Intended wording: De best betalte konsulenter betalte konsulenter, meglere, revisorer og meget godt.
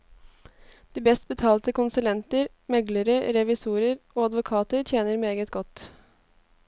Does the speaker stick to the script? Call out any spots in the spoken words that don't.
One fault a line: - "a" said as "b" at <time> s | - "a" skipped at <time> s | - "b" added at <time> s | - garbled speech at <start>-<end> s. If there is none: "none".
- "betalte konsulenter" skipped at 2.5 s
- "advokater tjener" added at 4.3 s